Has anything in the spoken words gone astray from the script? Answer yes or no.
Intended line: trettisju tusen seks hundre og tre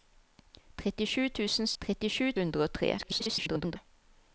yes